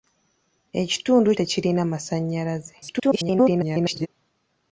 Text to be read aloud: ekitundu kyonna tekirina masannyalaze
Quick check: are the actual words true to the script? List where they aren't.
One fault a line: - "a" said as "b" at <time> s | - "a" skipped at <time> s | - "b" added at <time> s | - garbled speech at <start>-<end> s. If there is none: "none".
- "kyonna" skipped at 1.3 s
- garbled speech at 2.8-4.1 s